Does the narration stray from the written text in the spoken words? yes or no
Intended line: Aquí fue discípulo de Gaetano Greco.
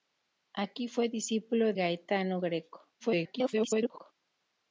yes